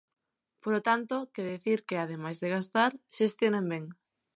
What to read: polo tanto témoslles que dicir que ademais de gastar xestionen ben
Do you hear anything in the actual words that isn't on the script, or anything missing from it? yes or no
yes